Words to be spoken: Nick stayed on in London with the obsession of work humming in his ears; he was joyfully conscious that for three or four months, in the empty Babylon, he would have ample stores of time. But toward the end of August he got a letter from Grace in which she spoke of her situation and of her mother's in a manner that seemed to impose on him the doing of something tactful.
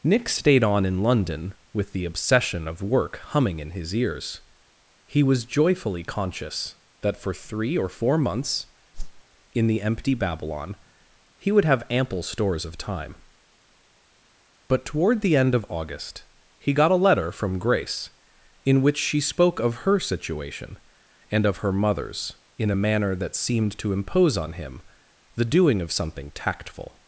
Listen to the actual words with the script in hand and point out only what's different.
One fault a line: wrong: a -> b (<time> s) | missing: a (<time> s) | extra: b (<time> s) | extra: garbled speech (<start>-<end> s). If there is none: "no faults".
no faults